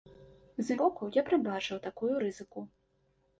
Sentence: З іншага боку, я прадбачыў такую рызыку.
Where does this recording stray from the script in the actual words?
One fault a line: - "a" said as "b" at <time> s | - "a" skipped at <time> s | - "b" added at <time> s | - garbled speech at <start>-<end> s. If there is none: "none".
- "іншага" skipped at 0.8 s